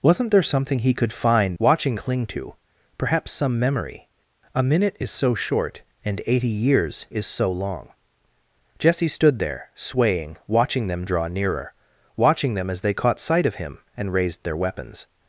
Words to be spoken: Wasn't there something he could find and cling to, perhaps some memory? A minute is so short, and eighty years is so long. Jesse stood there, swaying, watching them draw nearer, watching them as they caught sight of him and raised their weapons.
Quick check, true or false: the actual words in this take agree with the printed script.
false